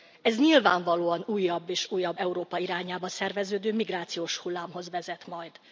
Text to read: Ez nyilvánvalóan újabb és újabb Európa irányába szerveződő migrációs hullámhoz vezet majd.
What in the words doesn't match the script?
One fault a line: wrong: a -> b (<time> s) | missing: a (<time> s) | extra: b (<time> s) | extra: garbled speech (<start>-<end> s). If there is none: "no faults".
no faults